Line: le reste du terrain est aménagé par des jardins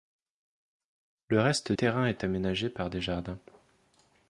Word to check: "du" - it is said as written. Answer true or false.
false